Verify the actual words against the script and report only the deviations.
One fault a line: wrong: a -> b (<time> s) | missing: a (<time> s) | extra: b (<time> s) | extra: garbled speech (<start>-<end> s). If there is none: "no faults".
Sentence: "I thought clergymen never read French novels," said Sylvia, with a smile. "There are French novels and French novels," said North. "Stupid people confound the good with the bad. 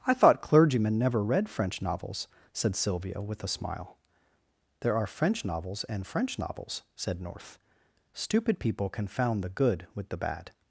no faults